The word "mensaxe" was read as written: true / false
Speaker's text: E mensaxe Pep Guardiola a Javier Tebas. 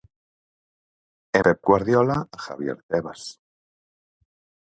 false